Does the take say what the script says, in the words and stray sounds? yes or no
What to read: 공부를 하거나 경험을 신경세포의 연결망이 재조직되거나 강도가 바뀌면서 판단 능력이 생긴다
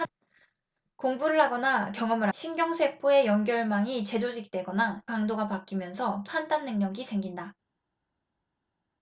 yes